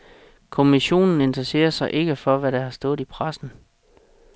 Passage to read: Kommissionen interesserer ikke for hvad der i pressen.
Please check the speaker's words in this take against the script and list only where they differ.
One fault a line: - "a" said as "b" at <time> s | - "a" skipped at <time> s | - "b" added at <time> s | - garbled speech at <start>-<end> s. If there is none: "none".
- "sig" added at 1.7 s
- "har stået" added at 2.6 s